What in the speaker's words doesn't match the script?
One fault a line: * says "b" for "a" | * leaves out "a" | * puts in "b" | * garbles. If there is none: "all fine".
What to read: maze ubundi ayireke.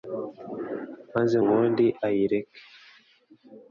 all fine